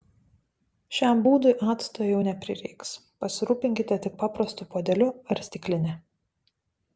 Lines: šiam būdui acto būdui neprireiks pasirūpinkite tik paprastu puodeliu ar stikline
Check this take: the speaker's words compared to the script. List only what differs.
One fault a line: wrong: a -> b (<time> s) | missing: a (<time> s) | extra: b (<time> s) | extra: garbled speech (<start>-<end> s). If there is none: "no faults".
wrong: būdui -> jau (2.1 s)